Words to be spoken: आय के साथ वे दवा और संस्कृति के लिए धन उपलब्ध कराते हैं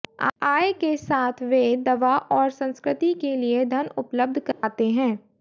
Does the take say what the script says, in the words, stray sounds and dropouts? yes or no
no